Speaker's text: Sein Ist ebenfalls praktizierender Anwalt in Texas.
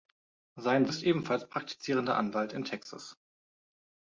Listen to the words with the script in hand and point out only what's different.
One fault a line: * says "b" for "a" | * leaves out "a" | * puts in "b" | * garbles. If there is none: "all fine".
all fine